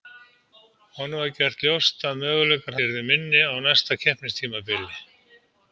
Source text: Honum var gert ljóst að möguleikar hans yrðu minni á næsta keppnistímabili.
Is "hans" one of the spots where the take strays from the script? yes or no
yes